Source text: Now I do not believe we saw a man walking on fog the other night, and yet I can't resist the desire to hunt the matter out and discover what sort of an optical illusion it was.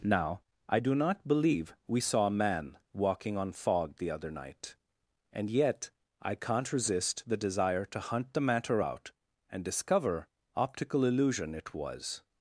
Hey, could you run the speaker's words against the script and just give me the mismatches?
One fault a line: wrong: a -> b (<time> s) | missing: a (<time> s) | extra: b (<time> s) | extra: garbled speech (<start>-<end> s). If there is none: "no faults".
missing: what sort of an (10.3 s)